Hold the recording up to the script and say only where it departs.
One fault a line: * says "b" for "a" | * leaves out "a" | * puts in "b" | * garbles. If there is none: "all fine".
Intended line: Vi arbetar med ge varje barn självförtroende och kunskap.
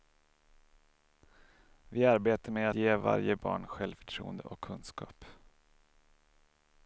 all fine